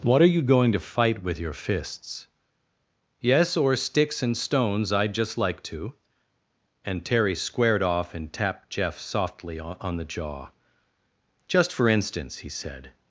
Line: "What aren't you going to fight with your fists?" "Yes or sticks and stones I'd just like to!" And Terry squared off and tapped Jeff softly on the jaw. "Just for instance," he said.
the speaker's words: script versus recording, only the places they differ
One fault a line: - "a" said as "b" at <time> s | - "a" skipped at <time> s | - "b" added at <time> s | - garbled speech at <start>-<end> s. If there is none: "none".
- "aren't" said as "are" at 0.2 s